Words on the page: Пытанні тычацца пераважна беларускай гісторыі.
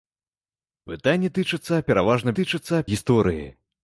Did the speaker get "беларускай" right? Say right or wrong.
wrong